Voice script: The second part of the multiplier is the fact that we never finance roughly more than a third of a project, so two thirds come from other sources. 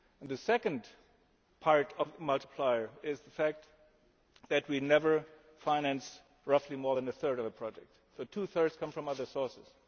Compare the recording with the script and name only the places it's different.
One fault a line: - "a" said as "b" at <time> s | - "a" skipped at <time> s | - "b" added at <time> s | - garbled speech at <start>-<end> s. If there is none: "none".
none